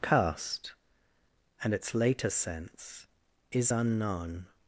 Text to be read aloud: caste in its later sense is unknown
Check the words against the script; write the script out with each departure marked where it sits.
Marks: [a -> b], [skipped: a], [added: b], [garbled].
caste [in -> and] its later sense is unknown